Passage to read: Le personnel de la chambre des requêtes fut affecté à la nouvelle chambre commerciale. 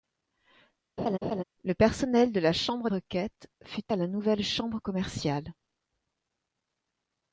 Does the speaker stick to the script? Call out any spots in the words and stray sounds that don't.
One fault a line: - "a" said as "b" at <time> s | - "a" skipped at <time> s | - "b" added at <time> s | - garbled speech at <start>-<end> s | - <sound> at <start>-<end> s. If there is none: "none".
- laugh at 1.0-1.4 s
- "des" skipped at 2.9 s
- "affecté" skipped at 3.9 s